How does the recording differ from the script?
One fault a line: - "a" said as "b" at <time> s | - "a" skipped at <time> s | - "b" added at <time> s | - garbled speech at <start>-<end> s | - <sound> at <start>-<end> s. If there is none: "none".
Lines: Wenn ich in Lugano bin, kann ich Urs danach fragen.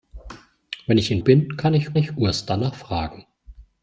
- "Lugano" skipped at 1.2 s
- "ich" added at 2.0 s